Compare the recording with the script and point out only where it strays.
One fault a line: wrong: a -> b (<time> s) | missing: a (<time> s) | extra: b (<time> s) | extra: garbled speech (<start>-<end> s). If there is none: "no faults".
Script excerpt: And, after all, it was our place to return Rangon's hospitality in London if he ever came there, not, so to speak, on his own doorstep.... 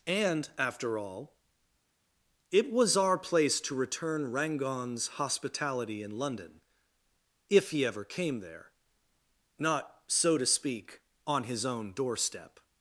no faults